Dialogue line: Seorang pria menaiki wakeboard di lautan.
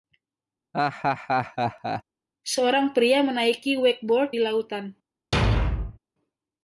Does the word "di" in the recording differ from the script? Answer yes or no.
no